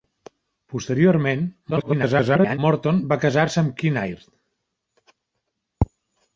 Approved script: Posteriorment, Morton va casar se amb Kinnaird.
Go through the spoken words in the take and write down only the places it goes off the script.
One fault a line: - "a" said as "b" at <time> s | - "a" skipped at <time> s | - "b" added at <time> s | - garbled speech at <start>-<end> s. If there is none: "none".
- garbled speech at 1.7-2.6 s